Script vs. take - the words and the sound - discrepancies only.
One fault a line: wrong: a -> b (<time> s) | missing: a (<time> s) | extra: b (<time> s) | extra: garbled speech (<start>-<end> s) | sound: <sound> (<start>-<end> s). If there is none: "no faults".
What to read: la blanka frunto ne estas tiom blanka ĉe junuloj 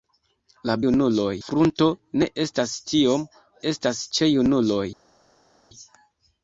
wrong: blanka -> junuloj (0.8 s)
wrong: blanka -> estas (3.7 s)